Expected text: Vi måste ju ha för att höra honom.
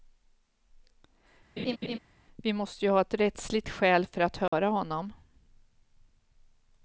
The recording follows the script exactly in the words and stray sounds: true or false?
false